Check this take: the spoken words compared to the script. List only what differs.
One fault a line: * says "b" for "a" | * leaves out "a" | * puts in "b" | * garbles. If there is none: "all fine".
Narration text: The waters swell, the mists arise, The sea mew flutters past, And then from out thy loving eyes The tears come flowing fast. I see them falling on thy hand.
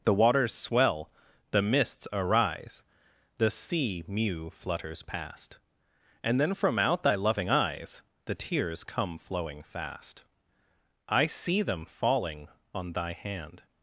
all fine